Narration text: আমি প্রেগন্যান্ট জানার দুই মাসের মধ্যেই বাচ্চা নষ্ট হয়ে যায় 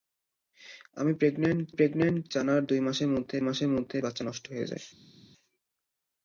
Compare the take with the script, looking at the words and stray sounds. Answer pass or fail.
fail